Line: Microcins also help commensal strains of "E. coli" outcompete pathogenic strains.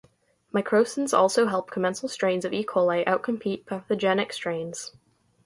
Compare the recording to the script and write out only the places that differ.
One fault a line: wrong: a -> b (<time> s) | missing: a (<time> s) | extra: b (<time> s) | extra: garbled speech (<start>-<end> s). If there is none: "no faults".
no faults